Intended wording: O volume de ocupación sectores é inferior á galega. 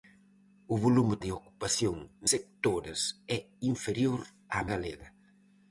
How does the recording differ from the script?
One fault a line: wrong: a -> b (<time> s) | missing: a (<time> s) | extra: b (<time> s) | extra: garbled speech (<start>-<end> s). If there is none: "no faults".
no faults